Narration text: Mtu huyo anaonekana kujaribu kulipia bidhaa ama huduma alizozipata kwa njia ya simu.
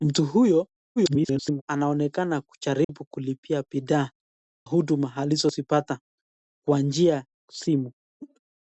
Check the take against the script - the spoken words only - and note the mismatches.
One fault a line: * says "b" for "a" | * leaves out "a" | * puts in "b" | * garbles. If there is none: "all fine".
* garbles
* leaves out "ama"
* leaves out "ya"